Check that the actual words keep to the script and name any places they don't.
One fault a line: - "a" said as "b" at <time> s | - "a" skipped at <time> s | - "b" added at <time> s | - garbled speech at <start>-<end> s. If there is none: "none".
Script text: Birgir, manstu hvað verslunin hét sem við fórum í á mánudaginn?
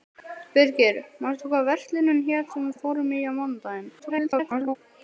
- "við" added at 2.7 s
- garbled speech at 4.0-4.8 s